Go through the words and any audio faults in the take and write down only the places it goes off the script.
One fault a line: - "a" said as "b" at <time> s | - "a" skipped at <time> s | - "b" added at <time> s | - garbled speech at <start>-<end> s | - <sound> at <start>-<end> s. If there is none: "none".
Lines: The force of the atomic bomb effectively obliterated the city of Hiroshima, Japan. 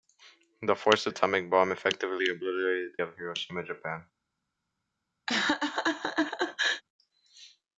- "the" skipped at 1.1 s
- "city" skipped at 3.0 s
- laugh at 5.3-6.8 s